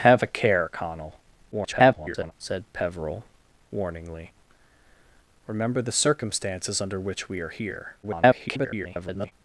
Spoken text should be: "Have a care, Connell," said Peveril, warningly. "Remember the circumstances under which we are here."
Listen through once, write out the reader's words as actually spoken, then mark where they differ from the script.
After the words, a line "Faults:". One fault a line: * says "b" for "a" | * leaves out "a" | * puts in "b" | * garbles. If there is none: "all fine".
"Have a care, Connell," [garbled] said Peveril, warningly. "Remember the circumstances under which we are here." [garbled]
Faults:
* garbles
* garbles